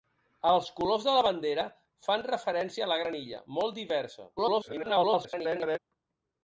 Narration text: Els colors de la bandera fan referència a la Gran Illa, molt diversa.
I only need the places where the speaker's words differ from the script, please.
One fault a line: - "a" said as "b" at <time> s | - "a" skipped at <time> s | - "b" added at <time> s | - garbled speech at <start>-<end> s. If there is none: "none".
- garbled speech at 4.4-5.8 s